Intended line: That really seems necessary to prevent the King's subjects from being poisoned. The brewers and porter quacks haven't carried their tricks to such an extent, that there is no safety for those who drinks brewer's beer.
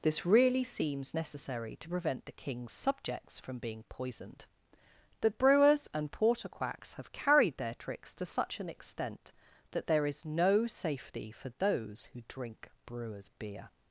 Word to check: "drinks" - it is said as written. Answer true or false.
false